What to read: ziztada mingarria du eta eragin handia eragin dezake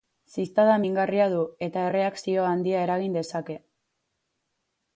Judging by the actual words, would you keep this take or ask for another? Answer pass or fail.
fail